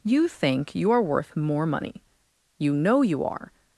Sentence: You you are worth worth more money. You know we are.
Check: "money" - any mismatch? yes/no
no